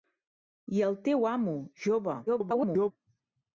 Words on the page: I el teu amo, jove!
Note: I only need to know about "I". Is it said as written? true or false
true